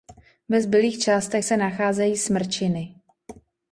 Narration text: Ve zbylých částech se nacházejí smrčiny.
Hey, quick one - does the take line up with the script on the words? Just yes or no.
yes